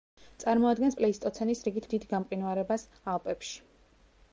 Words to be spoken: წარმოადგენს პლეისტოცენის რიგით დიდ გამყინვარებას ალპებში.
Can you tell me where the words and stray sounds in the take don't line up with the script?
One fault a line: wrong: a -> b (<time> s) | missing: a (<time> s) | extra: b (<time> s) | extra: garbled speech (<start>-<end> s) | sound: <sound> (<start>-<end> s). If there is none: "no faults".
no faults